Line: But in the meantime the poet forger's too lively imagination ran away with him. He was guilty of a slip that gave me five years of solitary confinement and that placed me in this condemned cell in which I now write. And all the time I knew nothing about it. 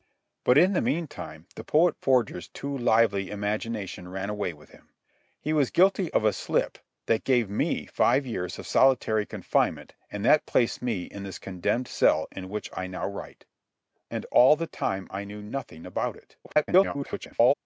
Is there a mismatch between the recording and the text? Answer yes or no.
yes